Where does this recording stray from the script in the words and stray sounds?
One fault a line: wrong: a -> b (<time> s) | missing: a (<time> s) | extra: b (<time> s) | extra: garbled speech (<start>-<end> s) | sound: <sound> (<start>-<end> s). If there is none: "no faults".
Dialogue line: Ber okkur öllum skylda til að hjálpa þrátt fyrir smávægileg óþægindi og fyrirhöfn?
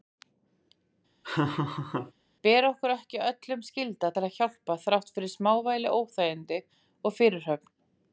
sound: laugh (1.2-2.1 s)
extra: ekki (2.9 s)